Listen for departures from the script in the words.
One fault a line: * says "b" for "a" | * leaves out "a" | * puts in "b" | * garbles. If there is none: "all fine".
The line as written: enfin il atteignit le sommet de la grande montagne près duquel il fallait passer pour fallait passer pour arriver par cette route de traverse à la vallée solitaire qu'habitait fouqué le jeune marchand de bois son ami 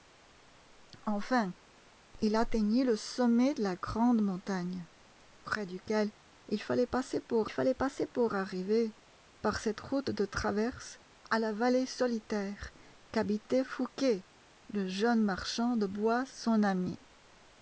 all fine